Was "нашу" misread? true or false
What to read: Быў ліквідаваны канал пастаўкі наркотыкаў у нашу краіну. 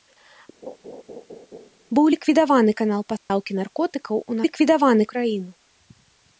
true